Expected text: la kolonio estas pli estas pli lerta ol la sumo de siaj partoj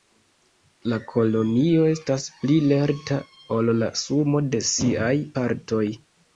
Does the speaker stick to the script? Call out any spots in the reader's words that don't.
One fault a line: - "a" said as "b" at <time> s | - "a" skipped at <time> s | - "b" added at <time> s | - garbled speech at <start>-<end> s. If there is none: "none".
- "estas pli" skipped at 2.6 s